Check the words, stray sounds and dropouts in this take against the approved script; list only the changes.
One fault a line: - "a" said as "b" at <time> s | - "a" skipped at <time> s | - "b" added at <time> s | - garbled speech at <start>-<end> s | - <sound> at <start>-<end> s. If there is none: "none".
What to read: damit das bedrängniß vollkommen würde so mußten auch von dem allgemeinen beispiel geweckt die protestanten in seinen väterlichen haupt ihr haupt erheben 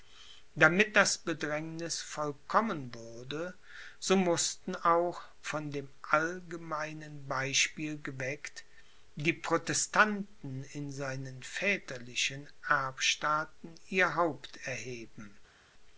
- "haupt" said as "erbstaaten" at 12.7 s